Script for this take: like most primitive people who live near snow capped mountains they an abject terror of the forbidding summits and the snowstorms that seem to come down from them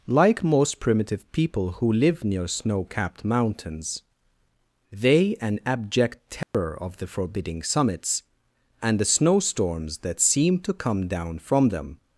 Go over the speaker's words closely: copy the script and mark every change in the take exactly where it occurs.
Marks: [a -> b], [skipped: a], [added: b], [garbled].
like most primitive people who live near snow capped mountains they an abject terror of the forbidding summits and the snowstorms that seem to come down from them